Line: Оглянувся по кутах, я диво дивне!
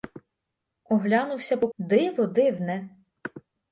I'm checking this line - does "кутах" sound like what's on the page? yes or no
no